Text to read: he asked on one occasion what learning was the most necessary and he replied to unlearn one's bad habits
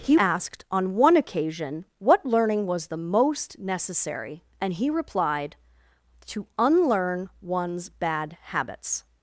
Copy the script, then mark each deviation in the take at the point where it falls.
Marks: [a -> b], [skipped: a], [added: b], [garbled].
he asked on one occasion what learning was the most necessary and he replied to unlearn one's bad habits